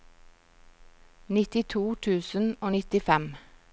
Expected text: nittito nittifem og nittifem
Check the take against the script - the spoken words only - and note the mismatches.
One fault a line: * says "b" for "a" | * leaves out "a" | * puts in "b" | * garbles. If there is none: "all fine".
* says "tusen" for "nittifem"